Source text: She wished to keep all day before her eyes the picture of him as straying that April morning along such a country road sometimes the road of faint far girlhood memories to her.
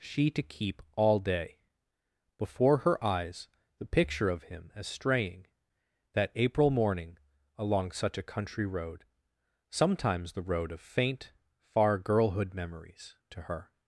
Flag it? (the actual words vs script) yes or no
yes